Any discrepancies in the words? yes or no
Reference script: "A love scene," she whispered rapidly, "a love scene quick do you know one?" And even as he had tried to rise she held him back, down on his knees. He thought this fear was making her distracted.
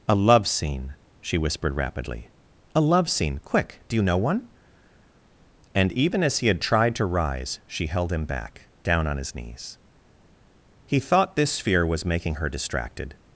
no